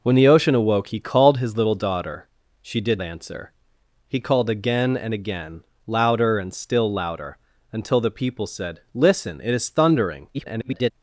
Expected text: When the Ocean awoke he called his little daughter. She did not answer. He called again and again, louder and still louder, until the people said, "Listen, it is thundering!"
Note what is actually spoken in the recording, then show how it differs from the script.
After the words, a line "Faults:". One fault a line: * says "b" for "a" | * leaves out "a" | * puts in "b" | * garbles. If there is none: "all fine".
When the Ocean awoke he called his little daughter. She did answer. He called again and again, louder and still louder, until the people said, "Listen, it is thundering!" [garbled]
Faults:
* leaves out "not"
* garbles